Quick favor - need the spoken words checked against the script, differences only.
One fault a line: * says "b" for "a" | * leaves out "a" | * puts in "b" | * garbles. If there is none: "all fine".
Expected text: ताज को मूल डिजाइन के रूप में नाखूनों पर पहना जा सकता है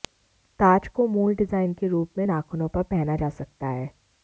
all fine